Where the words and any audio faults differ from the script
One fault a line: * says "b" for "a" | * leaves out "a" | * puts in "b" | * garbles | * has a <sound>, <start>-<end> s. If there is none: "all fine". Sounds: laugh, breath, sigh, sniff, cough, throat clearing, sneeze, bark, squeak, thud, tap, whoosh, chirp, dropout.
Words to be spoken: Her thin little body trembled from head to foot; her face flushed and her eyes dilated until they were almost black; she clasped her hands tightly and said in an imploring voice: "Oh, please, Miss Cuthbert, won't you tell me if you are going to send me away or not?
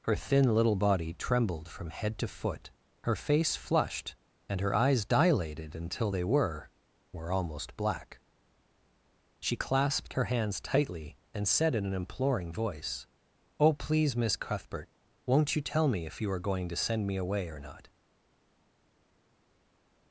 * puts in "were"